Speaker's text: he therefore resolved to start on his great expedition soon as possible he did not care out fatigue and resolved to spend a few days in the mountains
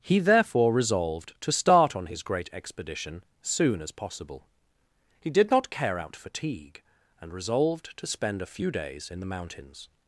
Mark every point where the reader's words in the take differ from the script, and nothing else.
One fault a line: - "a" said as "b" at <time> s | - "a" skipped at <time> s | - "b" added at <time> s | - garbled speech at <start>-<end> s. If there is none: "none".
none